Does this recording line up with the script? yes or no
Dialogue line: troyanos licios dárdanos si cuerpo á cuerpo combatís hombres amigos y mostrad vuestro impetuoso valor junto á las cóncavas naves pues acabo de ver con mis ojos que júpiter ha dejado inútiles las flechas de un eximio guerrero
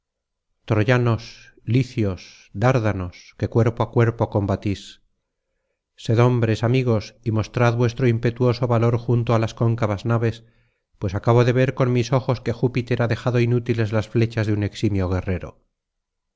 no